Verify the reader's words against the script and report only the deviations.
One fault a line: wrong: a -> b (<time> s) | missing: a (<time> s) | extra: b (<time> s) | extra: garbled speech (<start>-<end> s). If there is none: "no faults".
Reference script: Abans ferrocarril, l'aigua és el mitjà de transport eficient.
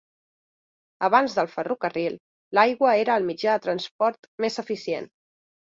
extra: del (1.4 s)
wrong: és -> era (3.0 s)
extra: més (4.5 s)